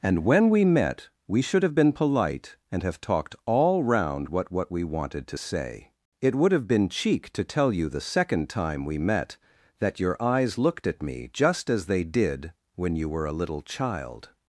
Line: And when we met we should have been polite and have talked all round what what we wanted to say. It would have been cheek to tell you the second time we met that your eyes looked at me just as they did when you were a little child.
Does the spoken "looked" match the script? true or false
true